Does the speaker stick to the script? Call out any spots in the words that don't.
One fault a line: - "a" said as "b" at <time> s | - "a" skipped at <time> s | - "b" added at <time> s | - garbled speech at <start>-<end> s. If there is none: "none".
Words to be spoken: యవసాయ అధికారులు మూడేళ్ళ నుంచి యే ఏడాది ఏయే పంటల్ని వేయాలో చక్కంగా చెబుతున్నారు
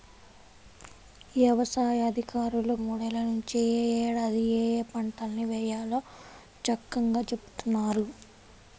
none